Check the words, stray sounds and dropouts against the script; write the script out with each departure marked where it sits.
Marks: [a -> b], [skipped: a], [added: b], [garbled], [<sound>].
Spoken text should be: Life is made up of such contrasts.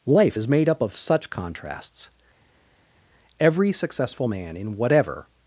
Life is made up of such contrasts. [added: Every successful man in whatever]